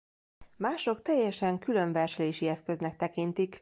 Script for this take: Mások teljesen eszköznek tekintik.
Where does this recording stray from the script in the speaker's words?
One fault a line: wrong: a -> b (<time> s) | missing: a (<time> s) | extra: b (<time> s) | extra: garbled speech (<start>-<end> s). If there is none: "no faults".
extra: külön verselési (1.6 s)